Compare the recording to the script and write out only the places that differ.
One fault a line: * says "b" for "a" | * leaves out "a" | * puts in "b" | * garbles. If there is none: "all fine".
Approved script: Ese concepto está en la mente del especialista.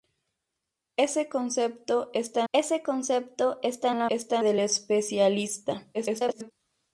* puts in "ese concepto está"
* says "está" for "mente"
* garbles